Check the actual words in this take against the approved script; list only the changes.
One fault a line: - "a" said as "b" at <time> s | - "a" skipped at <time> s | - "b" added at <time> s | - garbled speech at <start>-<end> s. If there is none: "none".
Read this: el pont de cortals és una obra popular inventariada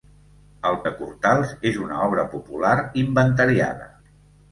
- "pont" skipped at 0.8 s